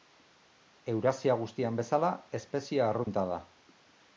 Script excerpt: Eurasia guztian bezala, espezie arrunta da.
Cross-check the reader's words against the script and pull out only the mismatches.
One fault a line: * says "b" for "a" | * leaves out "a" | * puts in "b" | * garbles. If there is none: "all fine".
all fine